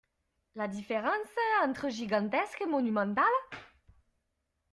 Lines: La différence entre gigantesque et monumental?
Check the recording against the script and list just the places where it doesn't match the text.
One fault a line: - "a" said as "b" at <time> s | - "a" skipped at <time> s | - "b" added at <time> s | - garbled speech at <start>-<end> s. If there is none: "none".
none